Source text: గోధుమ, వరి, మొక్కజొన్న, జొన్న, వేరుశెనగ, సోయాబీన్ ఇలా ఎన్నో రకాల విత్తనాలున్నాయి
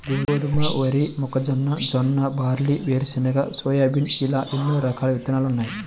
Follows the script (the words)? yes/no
no